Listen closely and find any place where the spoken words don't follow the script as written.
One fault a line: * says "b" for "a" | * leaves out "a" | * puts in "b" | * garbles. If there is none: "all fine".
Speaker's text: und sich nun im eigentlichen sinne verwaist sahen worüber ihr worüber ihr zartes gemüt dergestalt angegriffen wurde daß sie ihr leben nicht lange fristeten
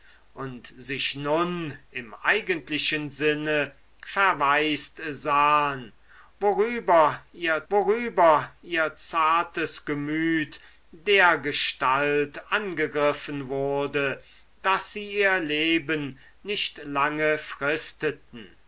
all fine